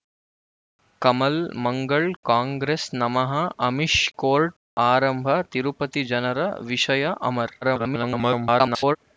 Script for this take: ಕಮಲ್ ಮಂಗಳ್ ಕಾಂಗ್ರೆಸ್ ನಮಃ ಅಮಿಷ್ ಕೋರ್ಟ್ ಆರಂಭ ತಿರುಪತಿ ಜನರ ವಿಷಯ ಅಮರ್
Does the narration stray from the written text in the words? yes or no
yes